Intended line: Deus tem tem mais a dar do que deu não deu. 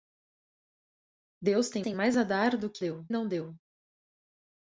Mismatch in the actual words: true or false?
false